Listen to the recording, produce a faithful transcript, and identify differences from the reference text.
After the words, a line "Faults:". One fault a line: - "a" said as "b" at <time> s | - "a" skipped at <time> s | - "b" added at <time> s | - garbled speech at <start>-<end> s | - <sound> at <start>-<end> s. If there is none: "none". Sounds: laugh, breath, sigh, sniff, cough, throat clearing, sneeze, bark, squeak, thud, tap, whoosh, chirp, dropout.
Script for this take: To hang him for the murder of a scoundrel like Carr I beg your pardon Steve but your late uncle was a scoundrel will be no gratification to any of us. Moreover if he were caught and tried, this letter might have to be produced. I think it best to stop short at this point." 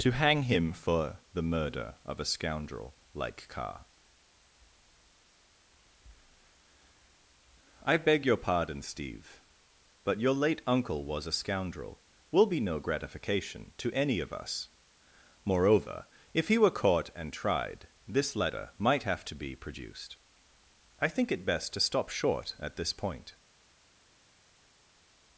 To hang him for the murder of a scoundrel like Carr I beg your pardon Steve but your late uncle was a scoundrel will be no gratification to any of us. Moreover if he were caught and tried, this letter might have to be produced. I think it best to stop short at this point."
Faults:
none